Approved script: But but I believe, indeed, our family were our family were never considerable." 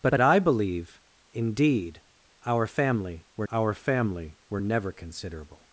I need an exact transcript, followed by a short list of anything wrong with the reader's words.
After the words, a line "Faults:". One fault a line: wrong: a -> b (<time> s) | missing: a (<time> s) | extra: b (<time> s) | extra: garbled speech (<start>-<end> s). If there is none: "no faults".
But but I believe, indeed, our family were our family were never considerable."
Faults:
no faults